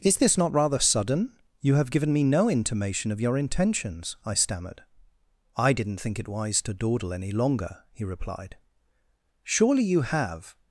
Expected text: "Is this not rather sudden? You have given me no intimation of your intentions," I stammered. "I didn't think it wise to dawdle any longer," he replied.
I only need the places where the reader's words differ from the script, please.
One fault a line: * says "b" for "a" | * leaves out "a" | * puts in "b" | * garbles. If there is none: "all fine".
* puts in "Surely you have"